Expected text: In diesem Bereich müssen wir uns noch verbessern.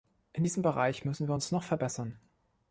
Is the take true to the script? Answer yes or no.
yes